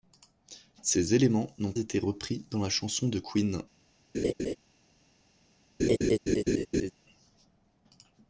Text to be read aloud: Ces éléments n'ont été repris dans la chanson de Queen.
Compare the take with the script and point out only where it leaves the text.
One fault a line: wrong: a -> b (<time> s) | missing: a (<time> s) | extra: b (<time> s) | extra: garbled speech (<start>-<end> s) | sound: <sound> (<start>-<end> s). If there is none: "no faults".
sound: laugh (4.1-4.6 s)
sound: laugh (5.8-6.9 s)